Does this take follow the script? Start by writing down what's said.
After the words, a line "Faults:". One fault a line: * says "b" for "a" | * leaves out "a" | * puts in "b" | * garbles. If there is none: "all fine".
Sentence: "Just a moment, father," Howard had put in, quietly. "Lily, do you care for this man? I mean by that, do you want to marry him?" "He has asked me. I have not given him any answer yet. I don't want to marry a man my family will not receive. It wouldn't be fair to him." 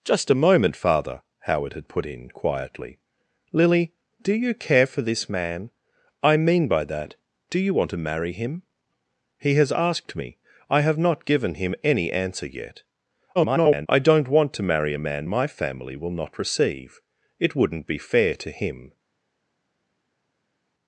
"Just a moment, father," Howard had put in, quietly. "Lily, do you care for this man? I mean by that, do you want to marry him?" "He has asked me. I have not given him any answer yet. [garbled] I don't want to marry a man my family will not receive. It wouldn't be fair to him."
Faults:
* garbles